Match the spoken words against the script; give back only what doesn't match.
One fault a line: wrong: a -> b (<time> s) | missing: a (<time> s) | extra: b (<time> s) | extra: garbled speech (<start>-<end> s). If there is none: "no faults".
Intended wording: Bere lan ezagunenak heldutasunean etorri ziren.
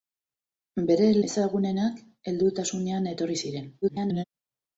missing: lan (1.1 s)
extra: garbled speech (3.8-4.2 s)